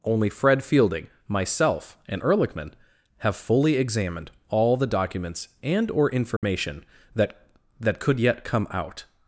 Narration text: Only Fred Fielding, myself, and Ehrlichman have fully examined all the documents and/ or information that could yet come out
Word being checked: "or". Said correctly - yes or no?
yes